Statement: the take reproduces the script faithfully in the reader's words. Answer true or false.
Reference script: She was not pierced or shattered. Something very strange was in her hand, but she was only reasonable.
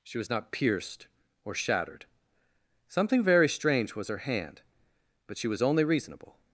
false